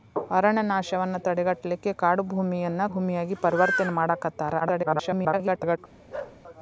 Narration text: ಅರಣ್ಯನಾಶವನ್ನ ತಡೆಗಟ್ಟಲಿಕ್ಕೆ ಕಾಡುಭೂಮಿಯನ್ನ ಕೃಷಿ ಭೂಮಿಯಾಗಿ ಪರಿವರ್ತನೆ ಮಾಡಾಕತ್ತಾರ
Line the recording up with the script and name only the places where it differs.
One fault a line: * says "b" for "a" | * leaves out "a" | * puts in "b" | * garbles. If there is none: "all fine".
* leaves out "ಕೃಷಿ"
* garbles